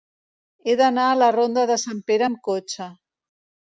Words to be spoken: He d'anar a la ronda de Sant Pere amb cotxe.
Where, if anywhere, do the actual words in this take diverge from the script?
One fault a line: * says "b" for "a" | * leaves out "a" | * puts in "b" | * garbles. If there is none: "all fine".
all fine